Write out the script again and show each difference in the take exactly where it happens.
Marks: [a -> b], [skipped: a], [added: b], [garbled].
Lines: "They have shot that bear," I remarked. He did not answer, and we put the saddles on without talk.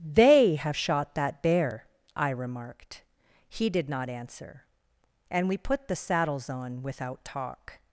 "They have shot that bear," I remarked. He did not answer, and we put the saddles on without talk.